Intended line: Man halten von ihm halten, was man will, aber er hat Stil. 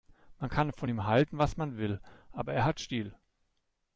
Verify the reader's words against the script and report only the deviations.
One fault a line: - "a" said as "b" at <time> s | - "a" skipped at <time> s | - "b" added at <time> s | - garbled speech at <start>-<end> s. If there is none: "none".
- "halten" said as "kann" at 0.5 s